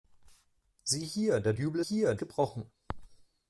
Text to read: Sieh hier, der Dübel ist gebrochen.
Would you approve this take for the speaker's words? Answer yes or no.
no